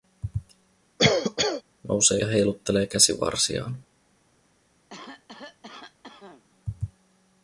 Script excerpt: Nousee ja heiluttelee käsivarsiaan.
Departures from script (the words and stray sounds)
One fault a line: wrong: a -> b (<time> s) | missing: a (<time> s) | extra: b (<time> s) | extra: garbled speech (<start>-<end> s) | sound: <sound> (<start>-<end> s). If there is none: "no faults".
sound: cough (1.0-1.6 s)
sound: cough (4.9-6.4 s)